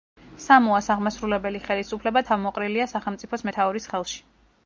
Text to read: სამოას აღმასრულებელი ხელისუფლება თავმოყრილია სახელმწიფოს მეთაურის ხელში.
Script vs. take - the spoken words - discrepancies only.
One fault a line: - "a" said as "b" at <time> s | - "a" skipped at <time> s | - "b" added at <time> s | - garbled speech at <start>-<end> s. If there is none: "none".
none